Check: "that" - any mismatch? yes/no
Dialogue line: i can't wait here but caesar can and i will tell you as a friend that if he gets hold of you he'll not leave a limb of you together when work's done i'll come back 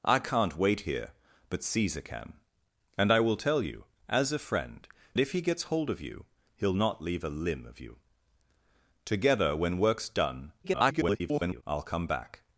yes